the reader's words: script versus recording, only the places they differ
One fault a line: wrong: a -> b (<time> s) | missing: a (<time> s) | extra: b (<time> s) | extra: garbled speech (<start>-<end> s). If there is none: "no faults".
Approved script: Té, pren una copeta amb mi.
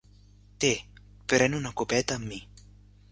no faults